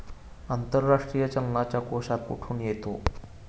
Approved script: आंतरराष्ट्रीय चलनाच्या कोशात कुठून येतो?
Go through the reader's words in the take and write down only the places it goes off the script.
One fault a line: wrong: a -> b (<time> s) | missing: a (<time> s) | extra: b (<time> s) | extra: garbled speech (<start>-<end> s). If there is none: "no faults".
no faults